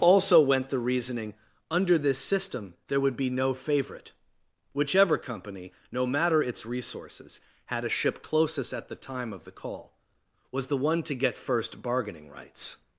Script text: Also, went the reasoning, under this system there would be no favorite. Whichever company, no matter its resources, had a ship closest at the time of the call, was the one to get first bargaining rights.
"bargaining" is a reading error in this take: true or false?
false